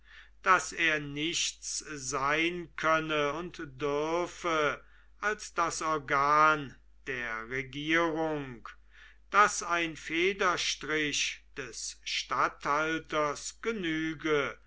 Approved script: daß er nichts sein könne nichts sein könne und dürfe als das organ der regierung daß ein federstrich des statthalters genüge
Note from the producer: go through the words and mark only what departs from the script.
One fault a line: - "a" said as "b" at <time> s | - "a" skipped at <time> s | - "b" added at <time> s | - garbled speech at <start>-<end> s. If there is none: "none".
- "nichts sein könne" skipped at 3.3 s